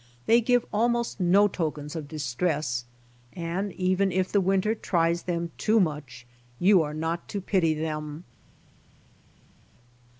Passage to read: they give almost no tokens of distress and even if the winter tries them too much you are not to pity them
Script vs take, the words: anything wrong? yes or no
no